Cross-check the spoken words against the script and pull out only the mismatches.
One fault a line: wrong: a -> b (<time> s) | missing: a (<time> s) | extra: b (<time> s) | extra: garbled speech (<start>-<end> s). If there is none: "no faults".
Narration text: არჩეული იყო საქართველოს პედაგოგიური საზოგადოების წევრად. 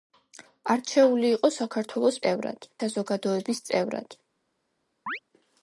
wrong: პედაგოგიური -> წევრად (2.2 s)